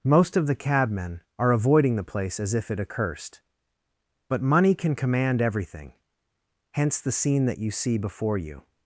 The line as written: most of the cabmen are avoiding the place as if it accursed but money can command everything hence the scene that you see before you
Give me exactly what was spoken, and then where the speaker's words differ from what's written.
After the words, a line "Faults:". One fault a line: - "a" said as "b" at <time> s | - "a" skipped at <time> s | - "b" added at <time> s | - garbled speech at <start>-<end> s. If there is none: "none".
most of the cabmen are avoiding the place as if it accursed but money can command everything hence the scene that you see before you
Faults:
none